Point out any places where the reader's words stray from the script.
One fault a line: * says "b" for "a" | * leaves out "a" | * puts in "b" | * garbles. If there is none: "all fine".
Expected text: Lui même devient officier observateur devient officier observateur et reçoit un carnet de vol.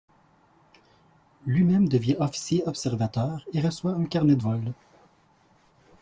* leaves out "devient officier observateur"